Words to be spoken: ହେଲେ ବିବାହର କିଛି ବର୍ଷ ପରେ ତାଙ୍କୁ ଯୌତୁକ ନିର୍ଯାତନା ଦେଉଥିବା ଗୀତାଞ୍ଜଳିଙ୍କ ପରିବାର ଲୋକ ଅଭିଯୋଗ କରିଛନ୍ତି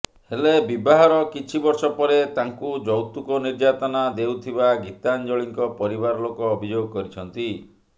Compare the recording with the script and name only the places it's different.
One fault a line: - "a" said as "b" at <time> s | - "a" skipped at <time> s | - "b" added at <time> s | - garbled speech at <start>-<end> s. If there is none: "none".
none